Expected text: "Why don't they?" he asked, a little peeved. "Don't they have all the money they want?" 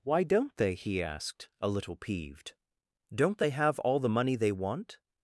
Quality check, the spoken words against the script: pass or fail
pass